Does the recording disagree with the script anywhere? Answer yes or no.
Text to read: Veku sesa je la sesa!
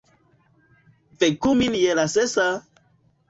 yes